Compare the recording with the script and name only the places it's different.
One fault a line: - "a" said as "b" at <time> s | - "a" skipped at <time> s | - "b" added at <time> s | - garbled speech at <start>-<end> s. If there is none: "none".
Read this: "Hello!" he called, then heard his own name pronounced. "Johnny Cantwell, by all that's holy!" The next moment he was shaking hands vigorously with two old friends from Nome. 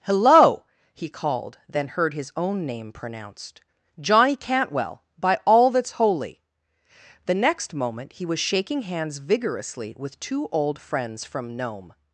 none